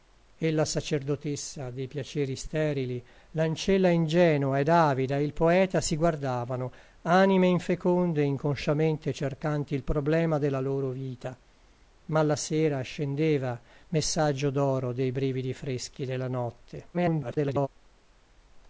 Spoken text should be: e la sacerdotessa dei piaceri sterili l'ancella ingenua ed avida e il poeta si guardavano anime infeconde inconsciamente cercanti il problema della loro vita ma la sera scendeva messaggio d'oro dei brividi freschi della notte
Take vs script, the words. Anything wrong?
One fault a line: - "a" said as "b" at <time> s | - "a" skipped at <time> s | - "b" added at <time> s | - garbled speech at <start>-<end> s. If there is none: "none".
- garbled speech at 16.9-17.7 s